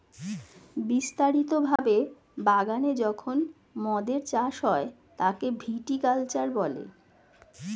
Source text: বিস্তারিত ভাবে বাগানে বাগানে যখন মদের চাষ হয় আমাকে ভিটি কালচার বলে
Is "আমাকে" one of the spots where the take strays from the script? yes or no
yes